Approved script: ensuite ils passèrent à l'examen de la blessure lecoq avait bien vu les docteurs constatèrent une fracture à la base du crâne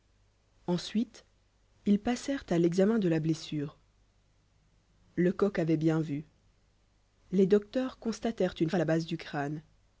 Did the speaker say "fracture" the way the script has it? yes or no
no